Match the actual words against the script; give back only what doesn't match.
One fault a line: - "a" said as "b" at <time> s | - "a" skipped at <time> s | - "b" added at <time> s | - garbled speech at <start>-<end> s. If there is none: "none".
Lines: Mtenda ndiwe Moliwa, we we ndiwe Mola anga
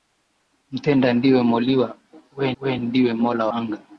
none